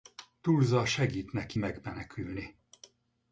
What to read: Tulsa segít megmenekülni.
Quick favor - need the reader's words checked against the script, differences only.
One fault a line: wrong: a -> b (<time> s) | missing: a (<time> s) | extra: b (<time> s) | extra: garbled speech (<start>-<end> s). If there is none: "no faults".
extra: neki (1.3 s)